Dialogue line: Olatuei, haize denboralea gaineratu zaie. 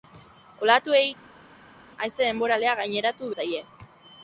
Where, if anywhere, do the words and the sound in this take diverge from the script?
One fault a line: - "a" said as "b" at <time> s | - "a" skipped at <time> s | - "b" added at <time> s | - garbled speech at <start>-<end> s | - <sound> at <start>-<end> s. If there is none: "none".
none